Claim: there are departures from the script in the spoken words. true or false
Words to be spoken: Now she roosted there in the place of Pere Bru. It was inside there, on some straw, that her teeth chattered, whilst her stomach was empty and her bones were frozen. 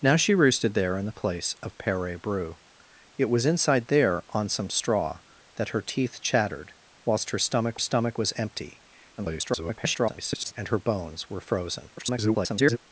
true